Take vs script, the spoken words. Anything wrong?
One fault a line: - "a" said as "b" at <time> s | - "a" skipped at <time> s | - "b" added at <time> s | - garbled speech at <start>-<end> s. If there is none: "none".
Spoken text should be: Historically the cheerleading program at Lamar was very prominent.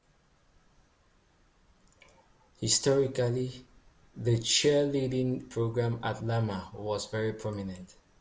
none